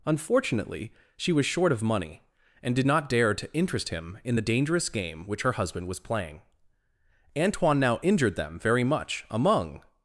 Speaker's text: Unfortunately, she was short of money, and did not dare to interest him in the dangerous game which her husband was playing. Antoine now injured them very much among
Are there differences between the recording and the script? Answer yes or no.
no